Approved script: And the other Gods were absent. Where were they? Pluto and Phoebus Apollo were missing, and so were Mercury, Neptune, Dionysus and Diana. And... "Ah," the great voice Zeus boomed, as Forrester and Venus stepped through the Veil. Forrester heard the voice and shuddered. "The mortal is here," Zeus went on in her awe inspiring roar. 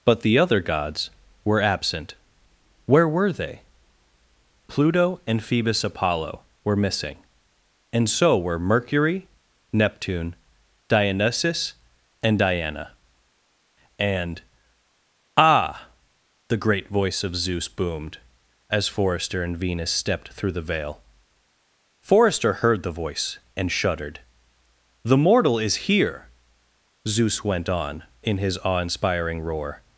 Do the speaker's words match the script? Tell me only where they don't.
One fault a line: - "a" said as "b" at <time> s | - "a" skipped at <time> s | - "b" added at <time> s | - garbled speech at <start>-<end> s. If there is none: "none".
- "And" said as "But" at 0.0 s
- "of" added at 17.2 s
- "her" said as "his" at 28.4 s